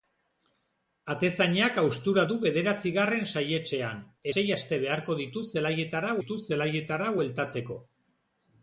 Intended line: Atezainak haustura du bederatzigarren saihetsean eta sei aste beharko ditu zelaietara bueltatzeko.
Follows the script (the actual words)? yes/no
no